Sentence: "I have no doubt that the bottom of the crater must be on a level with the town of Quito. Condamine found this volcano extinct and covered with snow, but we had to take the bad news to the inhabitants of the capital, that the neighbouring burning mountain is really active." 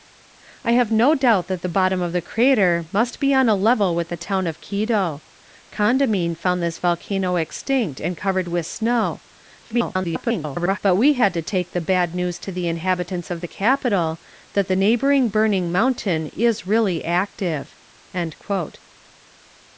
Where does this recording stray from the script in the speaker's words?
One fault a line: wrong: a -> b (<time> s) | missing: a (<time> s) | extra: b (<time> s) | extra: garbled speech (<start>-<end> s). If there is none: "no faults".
extra: garbled speech (9.6-10.8 s)